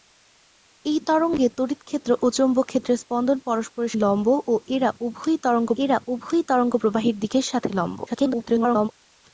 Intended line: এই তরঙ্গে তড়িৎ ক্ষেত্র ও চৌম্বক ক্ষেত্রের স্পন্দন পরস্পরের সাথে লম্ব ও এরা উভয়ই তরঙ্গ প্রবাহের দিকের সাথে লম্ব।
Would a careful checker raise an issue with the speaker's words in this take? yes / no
yes